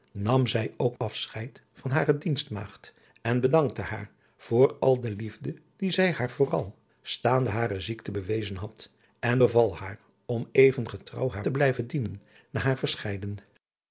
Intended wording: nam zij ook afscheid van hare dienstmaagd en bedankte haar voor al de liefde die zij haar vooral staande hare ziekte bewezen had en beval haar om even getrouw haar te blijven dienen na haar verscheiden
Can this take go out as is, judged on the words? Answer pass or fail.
pass